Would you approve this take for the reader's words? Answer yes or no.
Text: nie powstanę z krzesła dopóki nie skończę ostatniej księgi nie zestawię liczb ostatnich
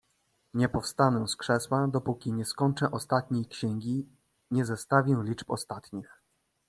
yes